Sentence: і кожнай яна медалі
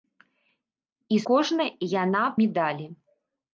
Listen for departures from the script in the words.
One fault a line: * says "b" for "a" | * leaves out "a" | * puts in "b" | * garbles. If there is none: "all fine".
all fine